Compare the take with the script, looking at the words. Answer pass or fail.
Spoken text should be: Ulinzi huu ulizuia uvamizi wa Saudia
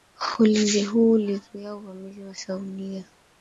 pass